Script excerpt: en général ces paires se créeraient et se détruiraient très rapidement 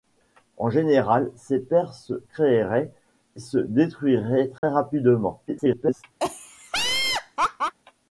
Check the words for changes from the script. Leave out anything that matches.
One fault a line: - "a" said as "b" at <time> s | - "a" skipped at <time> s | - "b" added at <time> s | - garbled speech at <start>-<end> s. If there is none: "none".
- "et" skipped at 2.9 s
- garbled speech at 5.5-6.0 s